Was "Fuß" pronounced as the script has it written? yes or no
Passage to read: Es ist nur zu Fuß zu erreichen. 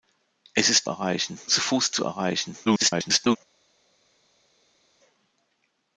yes